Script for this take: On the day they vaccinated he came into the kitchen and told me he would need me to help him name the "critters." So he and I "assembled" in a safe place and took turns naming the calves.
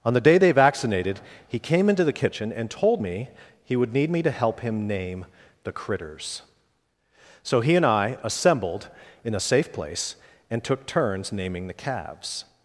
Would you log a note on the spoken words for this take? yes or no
no